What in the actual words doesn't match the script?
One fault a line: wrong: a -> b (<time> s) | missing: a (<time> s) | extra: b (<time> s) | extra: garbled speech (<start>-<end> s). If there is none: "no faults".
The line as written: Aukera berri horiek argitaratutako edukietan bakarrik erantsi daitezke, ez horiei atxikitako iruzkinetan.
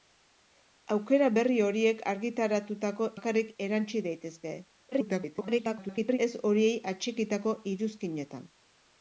missing: edukietan (3.1 s)
extra: garbled speech (4.9-6.2 s)